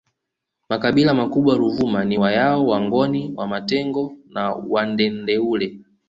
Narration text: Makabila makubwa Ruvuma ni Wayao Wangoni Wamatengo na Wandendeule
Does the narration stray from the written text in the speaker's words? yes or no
no